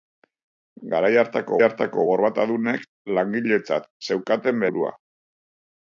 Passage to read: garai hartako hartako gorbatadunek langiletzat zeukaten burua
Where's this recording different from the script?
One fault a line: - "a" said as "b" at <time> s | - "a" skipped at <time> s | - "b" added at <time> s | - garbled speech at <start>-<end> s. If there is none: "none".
none